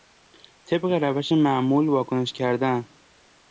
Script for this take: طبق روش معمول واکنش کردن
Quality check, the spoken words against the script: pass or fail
pass